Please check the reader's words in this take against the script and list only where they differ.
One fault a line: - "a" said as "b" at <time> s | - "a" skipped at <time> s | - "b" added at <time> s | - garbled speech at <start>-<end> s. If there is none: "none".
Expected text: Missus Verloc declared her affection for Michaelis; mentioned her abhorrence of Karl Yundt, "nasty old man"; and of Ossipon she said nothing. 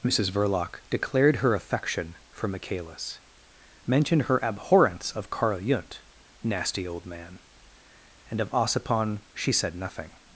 none